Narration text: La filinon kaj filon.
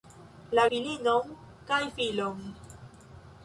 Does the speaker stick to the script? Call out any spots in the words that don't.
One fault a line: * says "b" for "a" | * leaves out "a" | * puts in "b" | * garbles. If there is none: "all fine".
all fine